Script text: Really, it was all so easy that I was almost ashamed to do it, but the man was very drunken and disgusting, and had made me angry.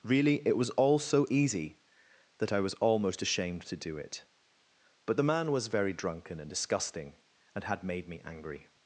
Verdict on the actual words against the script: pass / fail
pass